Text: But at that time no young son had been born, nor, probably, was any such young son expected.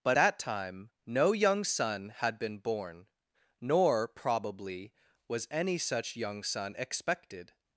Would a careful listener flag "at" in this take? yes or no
yes